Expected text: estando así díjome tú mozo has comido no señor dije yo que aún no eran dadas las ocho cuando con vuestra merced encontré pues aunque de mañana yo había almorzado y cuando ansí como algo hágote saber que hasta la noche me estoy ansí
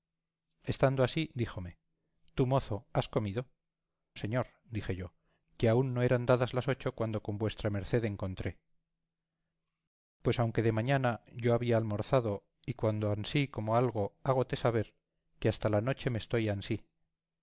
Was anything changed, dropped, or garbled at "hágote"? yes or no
no